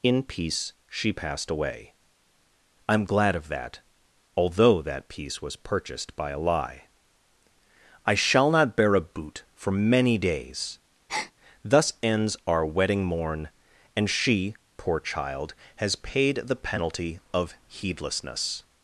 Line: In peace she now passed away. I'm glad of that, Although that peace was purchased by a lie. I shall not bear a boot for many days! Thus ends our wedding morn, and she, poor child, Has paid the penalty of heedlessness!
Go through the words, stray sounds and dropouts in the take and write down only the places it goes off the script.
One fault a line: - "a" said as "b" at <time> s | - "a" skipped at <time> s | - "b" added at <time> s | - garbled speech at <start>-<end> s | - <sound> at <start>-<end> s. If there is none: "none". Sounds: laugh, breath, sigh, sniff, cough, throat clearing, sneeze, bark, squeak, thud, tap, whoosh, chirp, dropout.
- "now" skipped at 1.1 s
- breath at 11.1-11.3 s